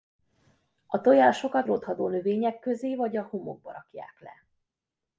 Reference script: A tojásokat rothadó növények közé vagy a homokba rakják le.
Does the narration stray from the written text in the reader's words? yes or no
no